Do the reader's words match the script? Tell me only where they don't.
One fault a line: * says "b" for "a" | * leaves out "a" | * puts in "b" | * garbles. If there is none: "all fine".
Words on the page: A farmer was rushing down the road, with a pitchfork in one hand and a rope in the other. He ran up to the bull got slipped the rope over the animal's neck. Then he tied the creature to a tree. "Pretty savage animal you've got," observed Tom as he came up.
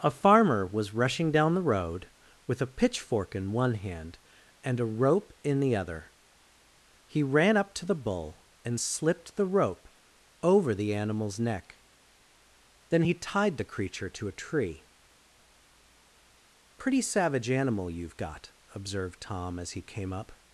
* says "and" for "got"